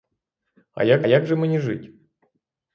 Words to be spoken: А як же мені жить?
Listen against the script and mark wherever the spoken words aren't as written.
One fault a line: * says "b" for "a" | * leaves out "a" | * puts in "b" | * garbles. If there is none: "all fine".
* puts in "як"